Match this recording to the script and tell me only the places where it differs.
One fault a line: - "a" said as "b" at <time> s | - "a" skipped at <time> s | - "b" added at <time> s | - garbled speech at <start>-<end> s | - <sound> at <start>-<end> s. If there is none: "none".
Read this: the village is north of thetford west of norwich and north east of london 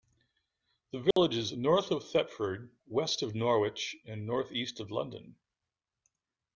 - dropout at 1.1-1.2 s